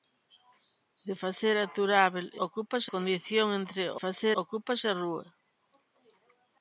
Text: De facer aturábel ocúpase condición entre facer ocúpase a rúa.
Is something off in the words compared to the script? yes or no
no